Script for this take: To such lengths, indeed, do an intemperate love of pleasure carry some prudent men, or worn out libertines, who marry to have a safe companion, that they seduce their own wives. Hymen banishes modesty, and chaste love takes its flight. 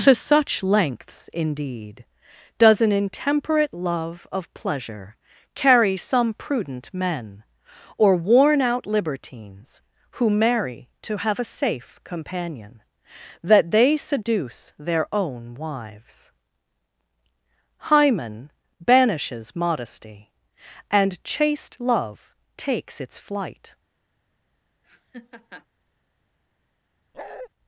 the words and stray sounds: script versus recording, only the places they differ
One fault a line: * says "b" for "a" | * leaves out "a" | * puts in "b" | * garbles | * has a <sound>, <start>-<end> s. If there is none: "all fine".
* says "does" for "do"
* has a laugh, 24.8-25.7 s
* has a bark, 27.1-27.5 s